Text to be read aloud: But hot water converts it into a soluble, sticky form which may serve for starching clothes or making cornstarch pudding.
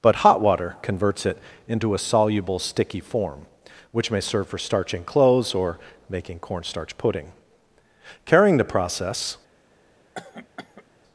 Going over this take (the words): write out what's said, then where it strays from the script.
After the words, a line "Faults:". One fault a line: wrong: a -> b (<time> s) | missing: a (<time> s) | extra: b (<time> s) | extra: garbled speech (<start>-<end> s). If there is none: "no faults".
But hot water converts it into a soluble, sticky form which may serve for starching clothes or making cornstarch pudding. Carrying the process
Faults:
extra: Carrying the process (8.2 s)